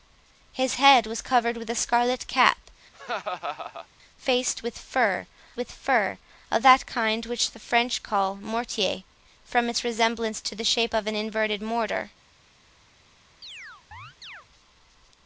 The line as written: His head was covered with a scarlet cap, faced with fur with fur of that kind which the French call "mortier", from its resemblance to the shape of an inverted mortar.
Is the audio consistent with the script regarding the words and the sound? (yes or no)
no